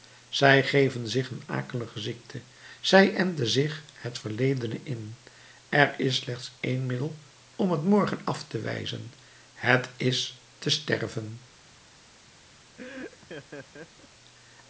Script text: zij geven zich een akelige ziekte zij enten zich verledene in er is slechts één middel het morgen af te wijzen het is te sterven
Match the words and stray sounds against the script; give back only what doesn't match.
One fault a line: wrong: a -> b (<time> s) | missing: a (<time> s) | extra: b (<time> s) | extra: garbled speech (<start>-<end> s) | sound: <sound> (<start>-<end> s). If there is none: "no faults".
extra: het (3.9 s)
extra: om (7.6 s)
sound: laugh (12.8-14.1 s)